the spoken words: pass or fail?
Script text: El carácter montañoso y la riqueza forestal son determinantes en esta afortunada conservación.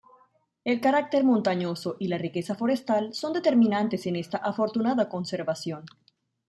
pass